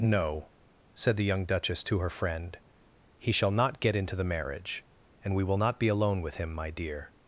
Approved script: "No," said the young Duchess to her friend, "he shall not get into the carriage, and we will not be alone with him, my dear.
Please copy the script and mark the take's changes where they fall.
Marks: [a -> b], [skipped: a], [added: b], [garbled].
"No," said the young Duchess to her friend, "he shall not get into the [carriage, -> marriage] and we will not be alone with him, my dear.